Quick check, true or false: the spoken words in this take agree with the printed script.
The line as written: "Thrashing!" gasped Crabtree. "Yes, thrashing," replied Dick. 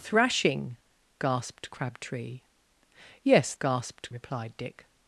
false